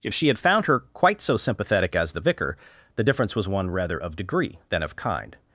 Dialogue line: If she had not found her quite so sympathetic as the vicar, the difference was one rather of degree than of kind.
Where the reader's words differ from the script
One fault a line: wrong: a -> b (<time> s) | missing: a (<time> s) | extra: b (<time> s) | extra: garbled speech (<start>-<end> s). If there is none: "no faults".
missing: not (0.4 s)